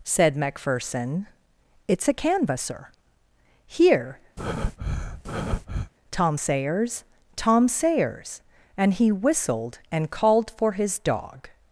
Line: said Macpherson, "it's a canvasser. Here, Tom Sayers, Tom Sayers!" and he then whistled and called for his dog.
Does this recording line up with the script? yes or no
no